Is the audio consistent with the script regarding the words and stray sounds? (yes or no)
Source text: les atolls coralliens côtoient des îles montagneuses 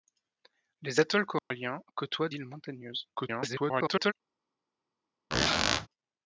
no